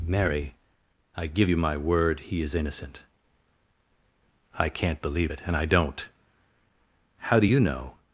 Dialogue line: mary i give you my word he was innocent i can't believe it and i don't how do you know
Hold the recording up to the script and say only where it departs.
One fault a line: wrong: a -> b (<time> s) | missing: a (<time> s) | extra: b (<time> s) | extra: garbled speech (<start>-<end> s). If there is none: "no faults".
wrong: was -> is (2.4 s)